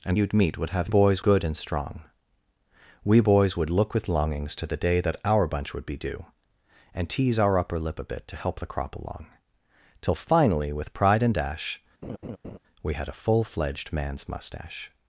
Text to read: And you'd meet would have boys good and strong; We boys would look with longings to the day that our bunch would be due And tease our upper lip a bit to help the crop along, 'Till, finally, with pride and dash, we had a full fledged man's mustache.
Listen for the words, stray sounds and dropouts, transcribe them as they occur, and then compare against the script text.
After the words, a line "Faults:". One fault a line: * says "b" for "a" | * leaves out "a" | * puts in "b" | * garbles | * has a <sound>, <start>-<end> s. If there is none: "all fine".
And you'd meet would have boys good and strong; We boys would look with longings to the day that our bunch would be due And tease our upper lip a bit to help the crop along, 'Till, finally, with pride and dash, we had a full fledged man's mustache.
Faults:
* has a laugh, 12.0-12.6 s